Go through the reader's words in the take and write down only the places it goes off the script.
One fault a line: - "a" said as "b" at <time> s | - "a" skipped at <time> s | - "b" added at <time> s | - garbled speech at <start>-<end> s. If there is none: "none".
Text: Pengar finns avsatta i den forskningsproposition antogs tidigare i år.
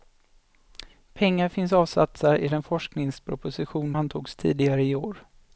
none